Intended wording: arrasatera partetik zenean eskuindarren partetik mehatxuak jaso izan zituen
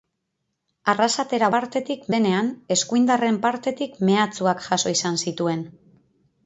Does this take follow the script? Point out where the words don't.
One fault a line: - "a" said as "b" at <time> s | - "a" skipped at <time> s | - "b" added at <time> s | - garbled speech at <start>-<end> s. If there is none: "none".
none